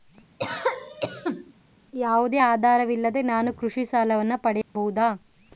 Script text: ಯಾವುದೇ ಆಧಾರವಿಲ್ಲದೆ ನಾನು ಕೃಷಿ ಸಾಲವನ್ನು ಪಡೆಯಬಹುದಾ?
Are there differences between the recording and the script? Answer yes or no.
no